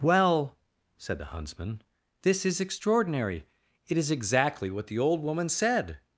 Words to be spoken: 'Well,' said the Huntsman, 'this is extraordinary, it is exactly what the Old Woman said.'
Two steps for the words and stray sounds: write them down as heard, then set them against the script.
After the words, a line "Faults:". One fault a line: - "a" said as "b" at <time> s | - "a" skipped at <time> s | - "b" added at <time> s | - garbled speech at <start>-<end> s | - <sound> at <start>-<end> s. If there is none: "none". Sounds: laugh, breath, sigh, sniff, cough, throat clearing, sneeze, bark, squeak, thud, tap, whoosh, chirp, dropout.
'Well,' said the Huntsman, 'this is extraordinary, it is exactly what the Old Woman said.'
Faults:
none